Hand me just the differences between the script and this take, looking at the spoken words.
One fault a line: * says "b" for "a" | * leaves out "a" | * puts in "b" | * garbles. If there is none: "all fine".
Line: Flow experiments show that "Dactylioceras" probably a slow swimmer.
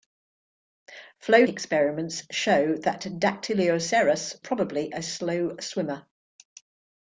all fine